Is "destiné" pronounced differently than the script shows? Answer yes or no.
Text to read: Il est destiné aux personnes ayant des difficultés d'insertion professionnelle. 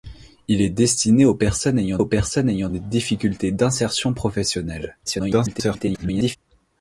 no